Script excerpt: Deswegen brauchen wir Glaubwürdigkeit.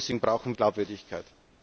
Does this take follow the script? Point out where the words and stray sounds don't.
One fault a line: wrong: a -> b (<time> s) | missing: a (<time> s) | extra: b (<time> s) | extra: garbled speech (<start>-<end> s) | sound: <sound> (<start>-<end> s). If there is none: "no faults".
missing: wir (0.6 s)